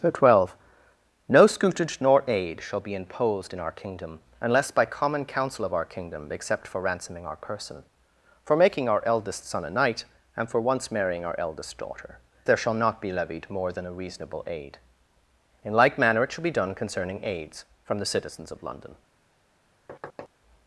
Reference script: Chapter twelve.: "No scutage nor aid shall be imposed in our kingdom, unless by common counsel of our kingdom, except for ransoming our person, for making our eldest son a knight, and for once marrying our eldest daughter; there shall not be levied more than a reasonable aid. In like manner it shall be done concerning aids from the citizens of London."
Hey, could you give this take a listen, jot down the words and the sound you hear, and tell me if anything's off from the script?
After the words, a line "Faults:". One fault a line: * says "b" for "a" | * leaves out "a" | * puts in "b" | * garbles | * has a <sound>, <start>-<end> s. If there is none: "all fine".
Chapter twelve.: "No scutage nor aid shall be imposed in our kingdom, unless by common counsel of our kingdom, except for ransoming our person, for making our eldest son a knight, and for once marrying our eldest daughter; there shall not be levied more than a reasonable aid. In like manner it shall be done concerning aids from the citizens of London."
Faults:
* has a thud, 19.9-20.3 s